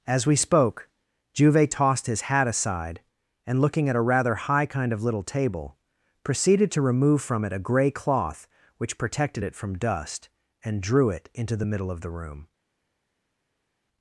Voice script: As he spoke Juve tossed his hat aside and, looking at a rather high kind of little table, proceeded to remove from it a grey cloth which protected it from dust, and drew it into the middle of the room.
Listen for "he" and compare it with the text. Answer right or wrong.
wrong